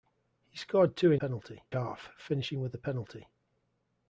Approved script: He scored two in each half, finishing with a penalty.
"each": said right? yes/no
no